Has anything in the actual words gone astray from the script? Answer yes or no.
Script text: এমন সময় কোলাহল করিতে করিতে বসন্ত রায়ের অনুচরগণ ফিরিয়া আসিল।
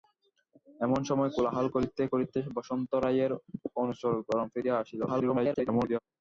yes